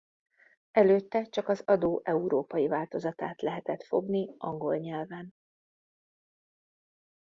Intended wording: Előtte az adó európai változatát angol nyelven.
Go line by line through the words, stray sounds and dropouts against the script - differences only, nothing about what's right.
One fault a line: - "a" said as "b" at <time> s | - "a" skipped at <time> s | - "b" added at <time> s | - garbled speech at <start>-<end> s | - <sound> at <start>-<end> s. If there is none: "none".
- "csak" added at 1.2 s
- "lehetett fogni" added at 3.4 s